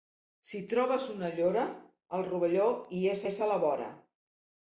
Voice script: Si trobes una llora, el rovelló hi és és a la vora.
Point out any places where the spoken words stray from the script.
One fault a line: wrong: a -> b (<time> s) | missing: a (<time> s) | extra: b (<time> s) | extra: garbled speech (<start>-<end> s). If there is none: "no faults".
no faults